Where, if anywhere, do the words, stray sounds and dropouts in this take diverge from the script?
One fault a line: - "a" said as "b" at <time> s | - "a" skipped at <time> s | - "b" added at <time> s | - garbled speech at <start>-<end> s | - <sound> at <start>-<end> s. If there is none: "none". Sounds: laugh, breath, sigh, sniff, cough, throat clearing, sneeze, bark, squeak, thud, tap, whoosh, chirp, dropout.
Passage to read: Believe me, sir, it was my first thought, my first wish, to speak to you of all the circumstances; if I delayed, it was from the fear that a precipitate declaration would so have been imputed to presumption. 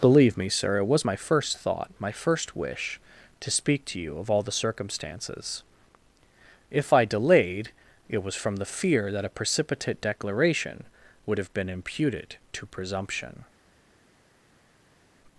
- "so" skipped at 11.4 s